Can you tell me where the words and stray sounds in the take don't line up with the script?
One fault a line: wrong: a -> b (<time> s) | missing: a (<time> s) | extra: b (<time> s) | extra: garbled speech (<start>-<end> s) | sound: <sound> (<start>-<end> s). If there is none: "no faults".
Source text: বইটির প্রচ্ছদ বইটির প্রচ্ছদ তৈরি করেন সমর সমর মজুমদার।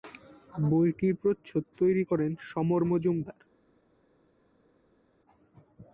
missing: বইটির প্রচ্ছদ (1.6 s)
missing: সমর (2.8 s)